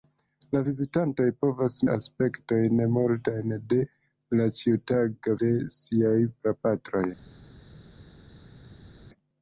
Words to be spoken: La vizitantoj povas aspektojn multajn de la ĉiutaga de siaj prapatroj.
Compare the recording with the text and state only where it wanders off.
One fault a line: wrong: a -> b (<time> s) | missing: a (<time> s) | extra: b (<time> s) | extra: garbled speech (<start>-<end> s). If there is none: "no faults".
no faults